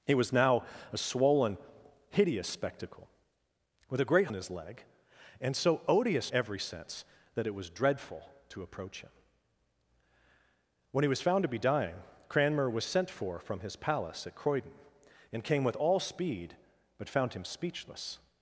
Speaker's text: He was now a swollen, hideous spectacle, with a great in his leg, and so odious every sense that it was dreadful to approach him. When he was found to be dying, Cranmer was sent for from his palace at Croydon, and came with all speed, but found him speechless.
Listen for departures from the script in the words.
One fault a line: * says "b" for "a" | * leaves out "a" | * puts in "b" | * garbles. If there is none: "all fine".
all fine